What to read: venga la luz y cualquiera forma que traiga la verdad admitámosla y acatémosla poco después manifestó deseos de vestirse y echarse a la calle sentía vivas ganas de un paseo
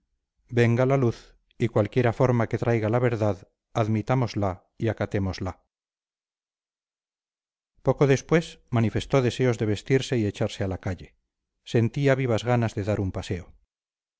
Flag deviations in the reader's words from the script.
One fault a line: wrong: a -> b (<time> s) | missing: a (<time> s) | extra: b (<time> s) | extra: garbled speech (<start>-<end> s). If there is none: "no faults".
extra: dar (12.8 s)